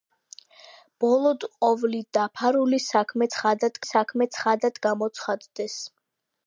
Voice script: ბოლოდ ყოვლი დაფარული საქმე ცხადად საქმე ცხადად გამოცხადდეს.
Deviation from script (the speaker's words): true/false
false